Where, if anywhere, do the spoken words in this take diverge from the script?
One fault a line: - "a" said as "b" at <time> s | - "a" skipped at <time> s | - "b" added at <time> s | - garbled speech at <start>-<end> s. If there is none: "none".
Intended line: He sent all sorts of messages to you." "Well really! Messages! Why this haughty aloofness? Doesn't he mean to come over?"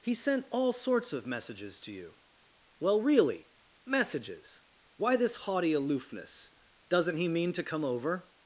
none